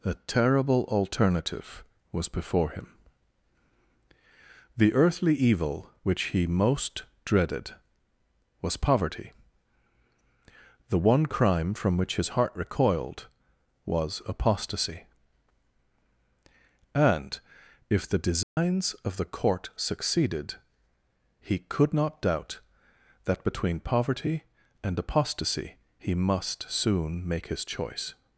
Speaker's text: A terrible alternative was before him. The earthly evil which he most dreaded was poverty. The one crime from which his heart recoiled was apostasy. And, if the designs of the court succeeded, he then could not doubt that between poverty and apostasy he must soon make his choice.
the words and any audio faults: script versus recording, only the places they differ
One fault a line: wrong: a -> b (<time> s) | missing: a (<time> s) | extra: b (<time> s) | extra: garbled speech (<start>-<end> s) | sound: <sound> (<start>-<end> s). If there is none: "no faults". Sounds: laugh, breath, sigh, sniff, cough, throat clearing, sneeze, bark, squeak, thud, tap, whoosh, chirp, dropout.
sound: dropout (18.4-18.6 s)
missing: then (21.6 s)